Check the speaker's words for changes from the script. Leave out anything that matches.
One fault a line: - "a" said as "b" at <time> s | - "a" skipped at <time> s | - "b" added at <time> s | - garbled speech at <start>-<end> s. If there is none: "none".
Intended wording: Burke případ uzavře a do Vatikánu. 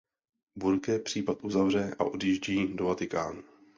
- "odjíždí" added at 2.0 s